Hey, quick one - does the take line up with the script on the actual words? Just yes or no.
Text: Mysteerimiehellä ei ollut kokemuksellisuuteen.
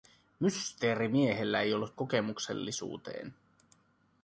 yes